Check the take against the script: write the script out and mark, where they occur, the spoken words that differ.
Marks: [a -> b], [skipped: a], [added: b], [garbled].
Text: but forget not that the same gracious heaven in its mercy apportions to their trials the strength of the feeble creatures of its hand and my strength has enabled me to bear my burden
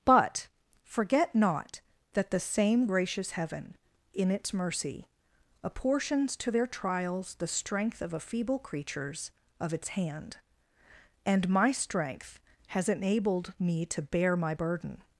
but forget not that the same gracious heaven in its mercy apportions to their trials the strength of [the -> a] feeble creatures of its hand and my strength has enabled me to bear my burden